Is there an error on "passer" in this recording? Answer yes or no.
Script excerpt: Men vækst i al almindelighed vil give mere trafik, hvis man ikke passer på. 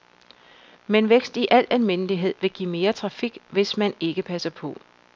no